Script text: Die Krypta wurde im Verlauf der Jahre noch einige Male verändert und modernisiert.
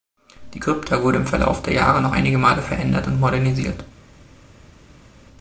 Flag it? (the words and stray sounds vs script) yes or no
no